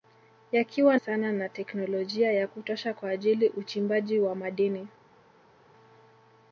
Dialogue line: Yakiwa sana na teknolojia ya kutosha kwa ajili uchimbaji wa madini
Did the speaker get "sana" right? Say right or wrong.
right